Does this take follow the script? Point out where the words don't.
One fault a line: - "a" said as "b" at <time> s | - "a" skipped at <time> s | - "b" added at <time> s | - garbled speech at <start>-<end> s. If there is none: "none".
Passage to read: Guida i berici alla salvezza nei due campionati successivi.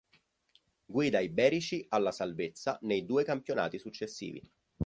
none